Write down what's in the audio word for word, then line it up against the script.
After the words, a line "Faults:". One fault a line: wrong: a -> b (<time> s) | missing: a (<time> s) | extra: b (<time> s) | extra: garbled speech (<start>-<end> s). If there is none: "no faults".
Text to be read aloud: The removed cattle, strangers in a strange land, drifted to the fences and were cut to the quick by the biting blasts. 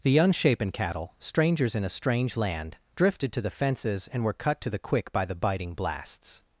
The unshapen cattle, strangers in a strange land, drifted to the fences and were cut to the quick by the biting blasts.
Faults:
wrong: removed -> unshapen (0.2 s)